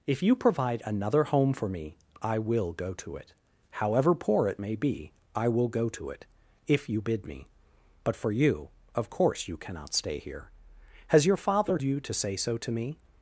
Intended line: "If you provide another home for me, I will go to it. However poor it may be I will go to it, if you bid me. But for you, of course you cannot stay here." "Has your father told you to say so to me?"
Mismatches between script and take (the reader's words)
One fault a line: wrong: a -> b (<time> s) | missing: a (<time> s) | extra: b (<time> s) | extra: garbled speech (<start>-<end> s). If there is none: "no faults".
missing: told (11.8 s)